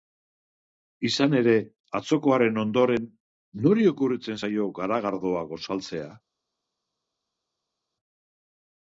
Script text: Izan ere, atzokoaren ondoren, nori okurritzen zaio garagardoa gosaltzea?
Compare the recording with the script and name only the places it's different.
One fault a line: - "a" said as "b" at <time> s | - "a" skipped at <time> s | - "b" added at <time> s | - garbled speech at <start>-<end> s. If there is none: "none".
none